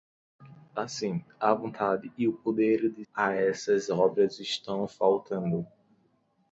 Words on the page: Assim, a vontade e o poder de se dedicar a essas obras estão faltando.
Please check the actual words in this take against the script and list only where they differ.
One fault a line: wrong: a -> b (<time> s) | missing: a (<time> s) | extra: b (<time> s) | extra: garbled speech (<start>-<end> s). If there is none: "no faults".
missing: se dedicar (3.0 s)